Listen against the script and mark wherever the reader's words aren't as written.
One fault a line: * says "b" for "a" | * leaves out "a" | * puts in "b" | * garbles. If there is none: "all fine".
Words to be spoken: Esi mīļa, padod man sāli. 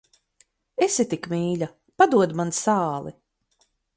* puts in "tik"